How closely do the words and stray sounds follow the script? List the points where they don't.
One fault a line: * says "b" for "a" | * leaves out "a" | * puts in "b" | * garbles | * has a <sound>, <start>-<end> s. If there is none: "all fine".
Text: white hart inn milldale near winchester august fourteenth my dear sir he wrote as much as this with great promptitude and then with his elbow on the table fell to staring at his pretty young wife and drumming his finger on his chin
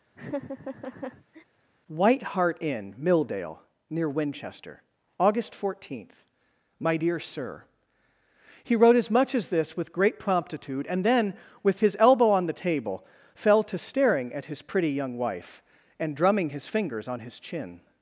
* has a laugh, 0.1-1.4 s
* says "fingers" for "finger"